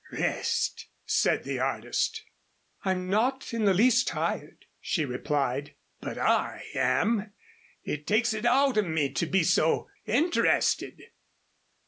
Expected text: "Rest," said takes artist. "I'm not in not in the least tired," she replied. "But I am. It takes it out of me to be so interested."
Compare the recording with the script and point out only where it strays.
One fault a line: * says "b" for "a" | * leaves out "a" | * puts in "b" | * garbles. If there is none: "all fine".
* says "the" for "takes"
* leaves out "not in"